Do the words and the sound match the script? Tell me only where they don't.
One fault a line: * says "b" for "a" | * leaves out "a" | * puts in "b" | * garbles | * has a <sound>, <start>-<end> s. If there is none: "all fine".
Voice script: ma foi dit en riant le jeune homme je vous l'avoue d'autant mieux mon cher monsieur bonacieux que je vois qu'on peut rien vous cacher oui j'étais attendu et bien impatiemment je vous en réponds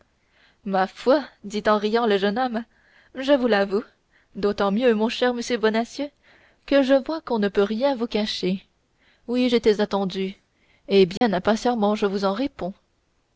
* puts in "ne"
* has a dropout, 11.2-11.2 s